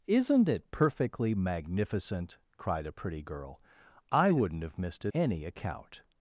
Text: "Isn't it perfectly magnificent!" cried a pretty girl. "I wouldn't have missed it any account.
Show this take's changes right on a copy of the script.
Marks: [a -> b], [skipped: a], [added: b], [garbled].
"Isn't it perfectly magnificent!" cried a pretty girl. "I wouldn't have missed it any account.